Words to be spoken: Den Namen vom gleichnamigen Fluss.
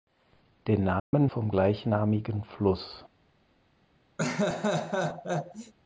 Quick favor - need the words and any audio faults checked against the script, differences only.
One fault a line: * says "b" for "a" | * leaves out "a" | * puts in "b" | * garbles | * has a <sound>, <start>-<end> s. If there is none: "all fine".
* has a dropout, 1.0-1.1 s
* has a laugh, 4.2-5.7 s